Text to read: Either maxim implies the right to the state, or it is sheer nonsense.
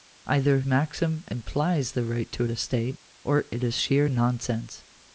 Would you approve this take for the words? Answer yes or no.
yes